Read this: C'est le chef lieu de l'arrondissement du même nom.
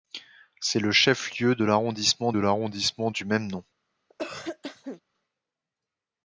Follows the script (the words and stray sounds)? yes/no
no